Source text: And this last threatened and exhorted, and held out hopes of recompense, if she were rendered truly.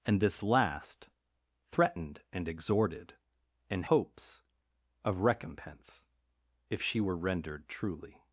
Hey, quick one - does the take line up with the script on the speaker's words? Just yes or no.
no